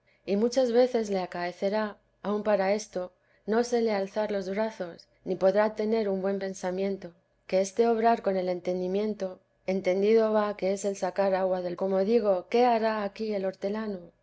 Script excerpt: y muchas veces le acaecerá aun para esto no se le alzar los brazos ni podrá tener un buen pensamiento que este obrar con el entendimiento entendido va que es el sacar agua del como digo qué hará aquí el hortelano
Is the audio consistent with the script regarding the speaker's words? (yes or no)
yes